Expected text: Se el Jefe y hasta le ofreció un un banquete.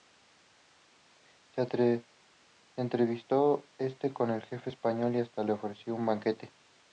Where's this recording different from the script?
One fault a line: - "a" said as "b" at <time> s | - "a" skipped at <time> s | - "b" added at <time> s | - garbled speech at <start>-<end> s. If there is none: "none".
- "entrevistó este con" added at 2.8 s
- "español" added at 4.7 s
- "un" skipped at 6.1 s